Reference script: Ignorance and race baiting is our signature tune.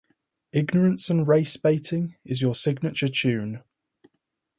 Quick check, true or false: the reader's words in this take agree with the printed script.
false